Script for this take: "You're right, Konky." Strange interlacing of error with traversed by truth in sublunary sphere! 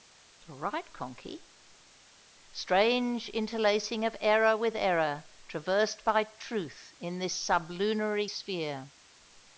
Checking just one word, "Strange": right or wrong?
right